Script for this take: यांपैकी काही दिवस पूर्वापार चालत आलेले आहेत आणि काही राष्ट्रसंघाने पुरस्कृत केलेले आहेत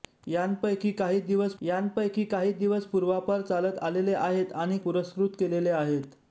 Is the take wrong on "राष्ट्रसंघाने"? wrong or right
wrong